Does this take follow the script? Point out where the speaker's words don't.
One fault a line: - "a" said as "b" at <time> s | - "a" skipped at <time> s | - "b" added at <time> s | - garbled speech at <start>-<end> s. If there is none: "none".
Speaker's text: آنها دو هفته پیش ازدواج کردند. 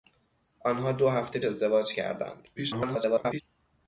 - "پیش" skipped at 1.4 s
- garbled speech at 2.6-3.4 s